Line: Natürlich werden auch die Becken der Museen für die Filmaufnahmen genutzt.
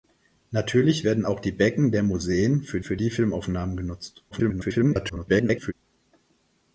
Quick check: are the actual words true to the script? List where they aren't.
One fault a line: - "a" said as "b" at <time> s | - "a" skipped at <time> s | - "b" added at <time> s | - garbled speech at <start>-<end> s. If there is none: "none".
- "für" added at 2.8 s
- garbled speech at 4.3-5.7 s